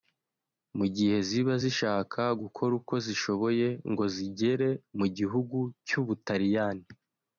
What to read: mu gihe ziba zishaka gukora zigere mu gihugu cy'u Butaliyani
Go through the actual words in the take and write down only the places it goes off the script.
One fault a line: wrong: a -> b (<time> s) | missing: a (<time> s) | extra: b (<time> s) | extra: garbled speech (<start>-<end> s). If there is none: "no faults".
extra: uko zishoboye ngo (2.8 s)